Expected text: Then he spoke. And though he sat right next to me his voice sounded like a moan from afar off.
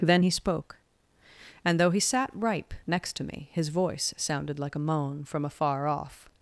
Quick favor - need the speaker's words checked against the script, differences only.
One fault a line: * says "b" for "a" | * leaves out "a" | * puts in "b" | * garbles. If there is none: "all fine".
* says "ripe" for "right"